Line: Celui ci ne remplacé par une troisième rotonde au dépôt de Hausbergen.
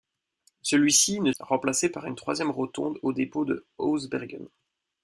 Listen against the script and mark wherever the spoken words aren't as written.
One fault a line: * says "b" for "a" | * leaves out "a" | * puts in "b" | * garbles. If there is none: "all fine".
all fine